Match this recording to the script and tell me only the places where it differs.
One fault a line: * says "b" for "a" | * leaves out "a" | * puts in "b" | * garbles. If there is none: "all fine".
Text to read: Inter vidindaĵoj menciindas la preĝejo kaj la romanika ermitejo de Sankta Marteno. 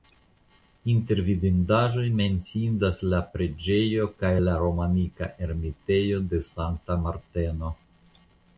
all fine